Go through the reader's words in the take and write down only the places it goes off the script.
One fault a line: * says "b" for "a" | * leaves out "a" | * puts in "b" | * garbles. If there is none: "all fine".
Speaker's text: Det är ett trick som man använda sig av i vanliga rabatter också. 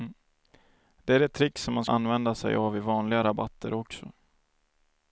all fine